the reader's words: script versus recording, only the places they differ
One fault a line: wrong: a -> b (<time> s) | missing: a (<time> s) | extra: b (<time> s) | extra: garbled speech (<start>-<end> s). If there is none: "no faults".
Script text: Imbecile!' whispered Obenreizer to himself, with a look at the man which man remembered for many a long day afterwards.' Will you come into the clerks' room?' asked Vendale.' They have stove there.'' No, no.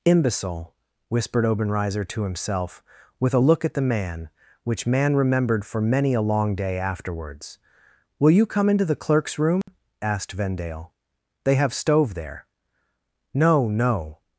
no faults